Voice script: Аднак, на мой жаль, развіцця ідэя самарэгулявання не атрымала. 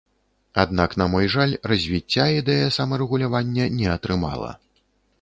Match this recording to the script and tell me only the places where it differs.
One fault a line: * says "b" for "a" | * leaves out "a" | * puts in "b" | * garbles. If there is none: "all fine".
all fine